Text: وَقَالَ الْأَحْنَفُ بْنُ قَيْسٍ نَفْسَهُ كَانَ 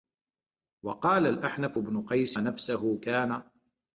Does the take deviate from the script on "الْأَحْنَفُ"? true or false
false